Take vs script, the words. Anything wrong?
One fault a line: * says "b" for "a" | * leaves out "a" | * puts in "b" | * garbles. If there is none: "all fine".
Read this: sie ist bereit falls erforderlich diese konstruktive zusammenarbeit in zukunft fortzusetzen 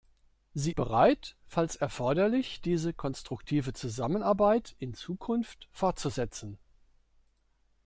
* leaves out "ist"